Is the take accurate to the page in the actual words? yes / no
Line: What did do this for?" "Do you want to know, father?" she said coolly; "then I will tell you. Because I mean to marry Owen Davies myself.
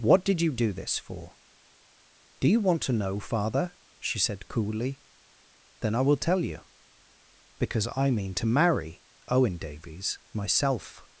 no